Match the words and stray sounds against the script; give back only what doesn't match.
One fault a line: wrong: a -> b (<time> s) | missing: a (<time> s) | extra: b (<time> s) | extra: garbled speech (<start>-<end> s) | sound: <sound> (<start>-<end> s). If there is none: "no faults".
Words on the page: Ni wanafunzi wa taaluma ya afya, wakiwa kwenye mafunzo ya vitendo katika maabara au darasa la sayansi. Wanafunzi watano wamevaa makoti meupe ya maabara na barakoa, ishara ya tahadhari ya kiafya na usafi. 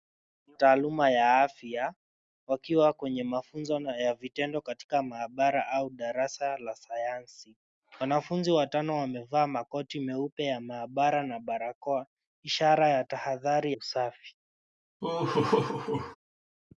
missing: wanafunzi wa (0.6 s)
missing: ya kiafya na (13.7 s)
sound: laugh (15.0-16.2 s)